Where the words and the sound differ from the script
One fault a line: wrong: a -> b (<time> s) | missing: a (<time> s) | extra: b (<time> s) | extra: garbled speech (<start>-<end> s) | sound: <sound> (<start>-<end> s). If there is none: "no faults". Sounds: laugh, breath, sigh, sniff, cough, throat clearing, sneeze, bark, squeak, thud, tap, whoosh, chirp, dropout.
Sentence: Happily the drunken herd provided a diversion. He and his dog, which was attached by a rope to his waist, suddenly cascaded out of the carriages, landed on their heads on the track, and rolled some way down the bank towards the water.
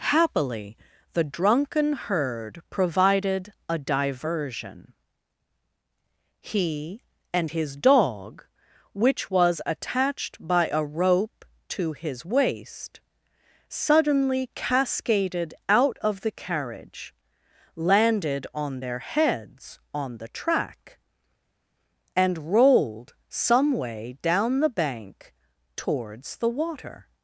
wrong: carriages -> carriage (16.3 s)